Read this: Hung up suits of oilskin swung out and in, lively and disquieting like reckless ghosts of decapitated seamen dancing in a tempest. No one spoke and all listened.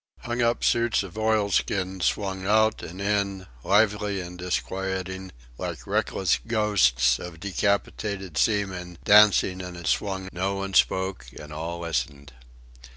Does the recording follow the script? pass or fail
fail